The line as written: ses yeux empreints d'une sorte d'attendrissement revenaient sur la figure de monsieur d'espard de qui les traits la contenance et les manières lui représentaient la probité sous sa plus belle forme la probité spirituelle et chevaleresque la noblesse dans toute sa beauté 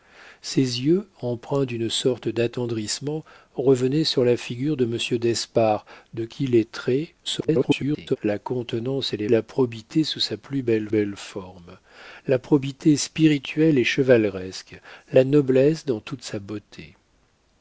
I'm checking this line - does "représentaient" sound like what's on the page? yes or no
no